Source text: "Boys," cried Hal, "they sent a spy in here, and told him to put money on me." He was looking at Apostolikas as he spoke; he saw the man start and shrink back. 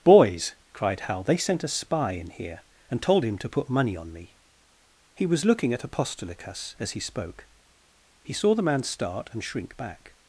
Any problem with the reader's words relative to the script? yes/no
no